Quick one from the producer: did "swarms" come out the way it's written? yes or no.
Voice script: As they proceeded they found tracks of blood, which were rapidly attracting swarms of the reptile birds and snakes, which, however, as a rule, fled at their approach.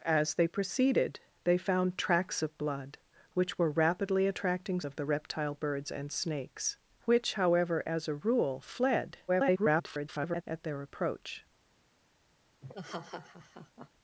no